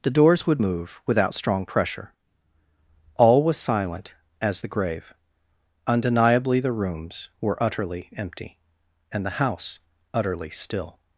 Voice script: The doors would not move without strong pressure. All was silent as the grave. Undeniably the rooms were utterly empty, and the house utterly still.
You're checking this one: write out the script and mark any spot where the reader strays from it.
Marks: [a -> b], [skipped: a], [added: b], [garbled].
The doors would [skipped: not] move without strong pressure. All was silent as the grave. Undeniably the rooms were utterly empty, and the house utterly still.